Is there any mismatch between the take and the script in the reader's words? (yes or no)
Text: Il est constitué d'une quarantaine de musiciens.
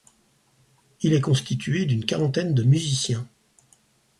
no